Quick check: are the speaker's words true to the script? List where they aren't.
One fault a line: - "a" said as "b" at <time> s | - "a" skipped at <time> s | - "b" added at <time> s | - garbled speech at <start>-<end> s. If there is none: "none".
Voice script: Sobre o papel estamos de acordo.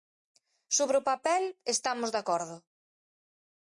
none